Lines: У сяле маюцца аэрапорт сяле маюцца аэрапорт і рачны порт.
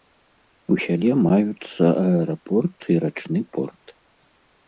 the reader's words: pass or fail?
fail